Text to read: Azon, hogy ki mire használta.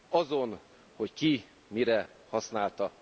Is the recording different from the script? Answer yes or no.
no